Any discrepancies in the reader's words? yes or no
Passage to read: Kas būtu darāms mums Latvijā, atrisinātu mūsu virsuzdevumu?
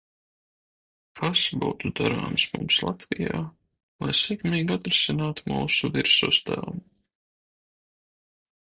yes